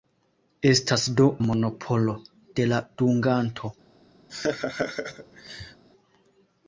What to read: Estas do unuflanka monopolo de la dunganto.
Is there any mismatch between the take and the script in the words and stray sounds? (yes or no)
yes